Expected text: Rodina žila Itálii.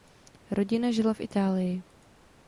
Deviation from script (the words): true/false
true